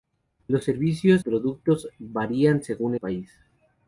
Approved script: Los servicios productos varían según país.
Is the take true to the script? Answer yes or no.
yes